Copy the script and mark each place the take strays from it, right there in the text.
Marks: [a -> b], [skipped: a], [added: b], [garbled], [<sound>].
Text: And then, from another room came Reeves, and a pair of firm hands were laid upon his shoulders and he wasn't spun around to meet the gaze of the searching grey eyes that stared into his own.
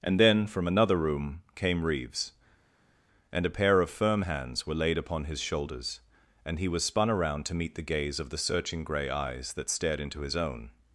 And then, from another room came Reeves, and a pair of firm hands were laid upon his shoulders and he [wasn't -> was] spun around to meet the gaze of the searching grey eyes that stared into his own.